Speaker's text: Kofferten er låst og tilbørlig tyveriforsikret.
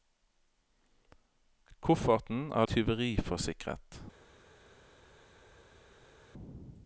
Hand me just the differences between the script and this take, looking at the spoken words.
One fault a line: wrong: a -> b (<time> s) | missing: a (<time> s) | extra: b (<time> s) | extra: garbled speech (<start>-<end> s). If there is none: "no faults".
missing: låst og tilbørlig (2.6 s)